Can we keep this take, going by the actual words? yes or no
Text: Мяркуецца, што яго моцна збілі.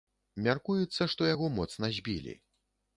yes